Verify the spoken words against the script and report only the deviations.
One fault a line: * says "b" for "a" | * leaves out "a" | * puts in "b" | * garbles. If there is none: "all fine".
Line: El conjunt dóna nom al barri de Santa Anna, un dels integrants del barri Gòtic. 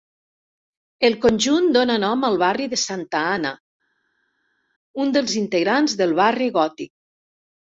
all fine